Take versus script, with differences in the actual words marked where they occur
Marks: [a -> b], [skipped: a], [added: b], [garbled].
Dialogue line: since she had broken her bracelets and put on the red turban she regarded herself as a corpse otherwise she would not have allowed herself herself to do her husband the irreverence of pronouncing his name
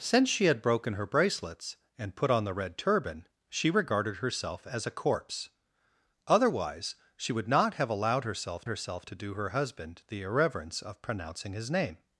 since she had broken her bracelets and put on the red turban she regarded herself as a corpse otherwise she would not have allowed herself herself to do her husband the irreverence of pronouncing his name